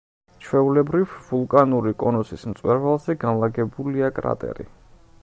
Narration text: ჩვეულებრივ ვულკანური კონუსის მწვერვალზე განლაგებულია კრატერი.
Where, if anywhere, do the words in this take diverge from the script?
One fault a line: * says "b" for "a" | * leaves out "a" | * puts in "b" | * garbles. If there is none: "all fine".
all fine